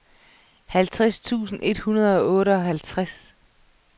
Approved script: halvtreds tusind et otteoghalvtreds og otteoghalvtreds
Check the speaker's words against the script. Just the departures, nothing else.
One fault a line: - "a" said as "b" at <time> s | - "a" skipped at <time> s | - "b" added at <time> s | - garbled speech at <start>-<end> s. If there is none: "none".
- "otteoghalvtreds" said as "hundrede" at 1.8 s